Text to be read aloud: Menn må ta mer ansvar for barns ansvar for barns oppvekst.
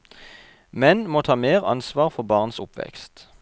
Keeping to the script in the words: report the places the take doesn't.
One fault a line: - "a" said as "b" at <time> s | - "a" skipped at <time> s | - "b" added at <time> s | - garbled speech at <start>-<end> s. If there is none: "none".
- "ansvar for barns" skipped at 2.6 s